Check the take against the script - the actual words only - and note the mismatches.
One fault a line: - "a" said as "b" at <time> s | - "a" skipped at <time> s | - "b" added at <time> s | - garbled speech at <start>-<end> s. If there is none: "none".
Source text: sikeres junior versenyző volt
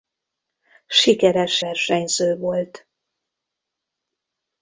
- "junior" skipped at 1.6 s